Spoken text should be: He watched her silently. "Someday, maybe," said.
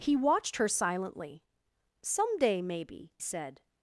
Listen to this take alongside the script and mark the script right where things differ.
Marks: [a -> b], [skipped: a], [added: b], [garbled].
He watched her silently. "Someday, maybe," said.